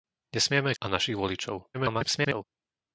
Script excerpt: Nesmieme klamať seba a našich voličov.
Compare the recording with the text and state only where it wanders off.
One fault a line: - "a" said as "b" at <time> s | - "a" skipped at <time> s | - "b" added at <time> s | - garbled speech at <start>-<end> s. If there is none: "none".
- "klamať seba" skipped at 0.7 s
- garbled speech at 1.7-2.4 s